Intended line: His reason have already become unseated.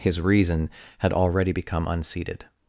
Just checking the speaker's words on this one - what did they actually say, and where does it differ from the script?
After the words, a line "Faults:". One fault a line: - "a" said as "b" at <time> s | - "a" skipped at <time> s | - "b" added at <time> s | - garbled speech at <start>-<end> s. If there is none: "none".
His reason had already become unseated.
Faults:
- "have" said as "had" at 1.0 s